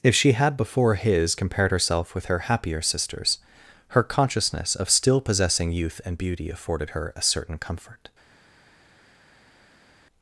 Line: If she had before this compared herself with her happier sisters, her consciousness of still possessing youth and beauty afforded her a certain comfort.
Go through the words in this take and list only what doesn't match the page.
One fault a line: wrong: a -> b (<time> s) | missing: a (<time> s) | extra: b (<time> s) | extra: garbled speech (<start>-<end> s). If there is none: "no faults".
wrong: this -> his (0.9 s)